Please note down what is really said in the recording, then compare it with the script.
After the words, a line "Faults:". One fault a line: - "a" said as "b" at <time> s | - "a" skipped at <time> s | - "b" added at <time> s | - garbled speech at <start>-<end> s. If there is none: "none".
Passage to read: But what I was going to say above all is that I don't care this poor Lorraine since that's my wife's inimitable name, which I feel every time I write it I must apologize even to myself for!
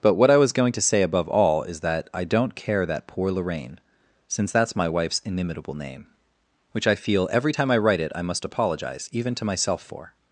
But what I was going to say above all is that I don't care that poor Lorraine since that's my wife's inimitable name, which I feel every time I write it I must apologize even to myself for!
Faults:
- "this" said as "that" at 2.9 s